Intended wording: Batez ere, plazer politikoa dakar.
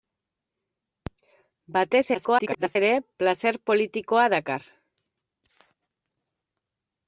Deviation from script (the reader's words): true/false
true